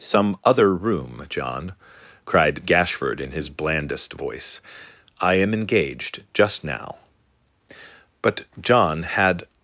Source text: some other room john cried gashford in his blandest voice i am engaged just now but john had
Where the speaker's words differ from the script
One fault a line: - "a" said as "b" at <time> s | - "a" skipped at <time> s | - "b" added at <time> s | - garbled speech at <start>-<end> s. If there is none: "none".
none